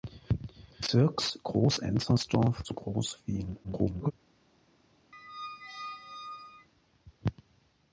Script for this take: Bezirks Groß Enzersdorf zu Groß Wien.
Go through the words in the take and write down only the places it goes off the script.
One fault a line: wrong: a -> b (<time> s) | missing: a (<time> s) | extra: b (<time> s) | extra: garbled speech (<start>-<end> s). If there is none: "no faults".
extra: garbled speech (3.6-4.1 s)